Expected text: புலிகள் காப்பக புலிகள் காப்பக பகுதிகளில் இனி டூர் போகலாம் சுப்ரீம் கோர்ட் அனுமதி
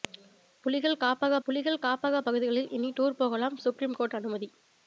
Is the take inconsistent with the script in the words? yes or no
no